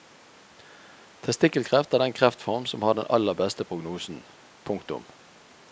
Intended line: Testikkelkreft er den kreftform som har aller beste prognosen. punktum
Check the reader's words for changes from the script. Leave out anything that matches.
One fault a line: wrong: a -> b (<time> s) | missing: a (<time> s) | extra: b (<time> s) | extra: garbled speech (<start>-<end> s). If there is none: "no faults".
extra: den (2.9 s)